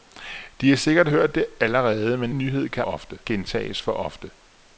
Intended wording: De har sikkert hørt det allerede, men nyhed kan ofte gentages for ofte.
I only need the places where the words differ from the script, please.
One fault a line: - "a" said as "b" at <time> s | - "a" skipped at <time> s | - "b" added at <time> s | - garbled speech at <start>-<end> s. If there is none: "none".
none